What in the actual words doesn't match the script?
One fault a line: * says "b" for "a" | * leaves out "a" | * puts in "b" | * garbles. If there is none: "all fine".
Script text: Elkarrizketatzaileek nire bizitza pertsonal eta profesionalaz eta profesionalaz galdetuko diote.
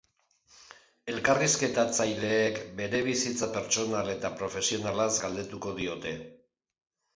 * says "bere" for "nire"
* leaves out "eta profesionalaz"